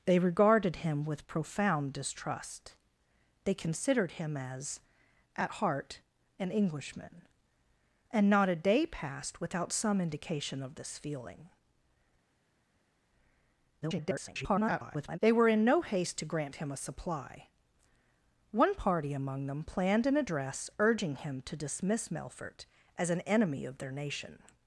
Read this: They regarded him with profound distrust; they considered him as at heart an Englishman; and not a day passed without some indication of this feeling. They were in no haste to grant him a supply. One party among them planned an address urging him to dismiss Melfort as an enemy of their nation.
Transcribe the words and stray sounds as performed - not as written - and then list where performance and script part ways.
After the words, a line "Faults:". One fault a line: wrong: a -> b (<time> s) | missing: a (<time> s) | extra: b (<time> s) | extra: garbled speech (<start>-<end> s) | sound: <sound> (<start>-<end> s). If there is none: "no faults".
They regarded him with profound distrust; they considered him as at heart an Englishman; and not a day passed without some indication of this feeling. [garbled] They were in no haste to grant him a supply. One party among them planned an address urging him to dismiss Melfort as an enemy of their nation.
Faults:
extra: garbled speech (13.8-15.2 s)